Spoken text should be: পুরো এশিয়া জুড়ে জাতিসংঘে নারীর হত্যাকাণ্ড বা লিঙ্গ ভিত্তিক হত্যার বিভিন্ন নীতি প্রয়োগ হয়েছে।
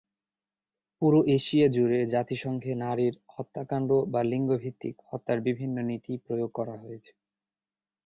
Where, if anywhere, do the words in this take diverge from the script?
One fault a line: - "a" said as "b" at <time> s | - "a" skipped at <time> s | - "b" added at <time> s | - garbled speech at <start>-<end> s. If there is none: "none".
- "করা" added at 6.5 s